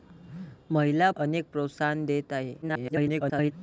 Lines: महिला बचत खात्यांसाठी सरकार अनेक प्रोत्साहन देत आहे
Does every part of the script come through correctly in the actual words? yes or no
no